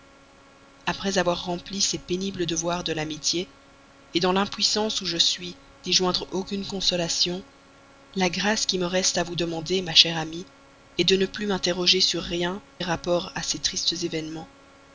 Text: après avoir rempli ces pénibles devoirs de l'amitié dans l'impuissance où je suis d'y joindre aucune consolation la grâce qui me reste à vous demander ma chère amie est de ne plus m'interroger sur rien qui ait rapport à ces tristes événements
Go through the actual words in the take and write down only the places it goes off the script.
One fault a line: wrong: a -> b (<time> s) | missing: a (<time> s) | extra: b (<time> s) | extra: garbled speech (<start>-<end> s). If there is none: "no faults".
missing: qui (12.6 s)